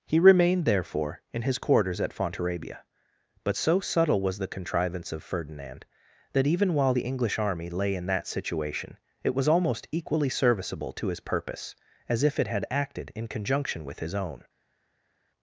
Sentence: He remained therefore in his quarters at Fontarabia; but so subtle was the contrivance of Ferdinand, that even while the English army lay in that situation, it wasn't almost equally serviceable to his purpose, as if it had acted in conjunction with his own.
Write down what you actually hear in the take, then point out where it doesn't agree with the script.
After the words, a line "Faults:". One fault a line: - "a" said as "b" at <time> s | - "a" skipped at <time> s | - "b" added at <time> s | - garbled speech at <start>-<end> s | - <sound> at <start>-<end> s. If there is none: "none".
He remained therefore in his quarters at Fontarabia; but so subtle was the contrivance of Ferdinand, that even while the English army lay in that situation, it was almost equally serviceable to his purpose, as if it had acted in conjunction with his own.
Faults:
- "wasn't" said as "was" at 9.3 s